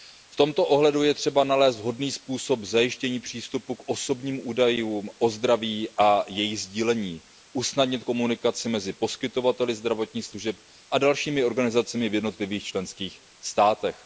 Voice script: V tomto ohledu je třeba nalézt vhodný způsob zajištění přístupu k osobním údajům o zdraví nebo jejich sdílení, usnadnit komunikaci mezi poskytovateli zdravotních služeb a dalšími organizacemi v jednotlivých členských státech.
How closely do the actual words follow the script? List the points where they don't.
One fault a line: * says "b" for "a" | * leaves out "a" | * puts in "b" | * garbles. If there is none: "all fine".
* says "a" for "nebo"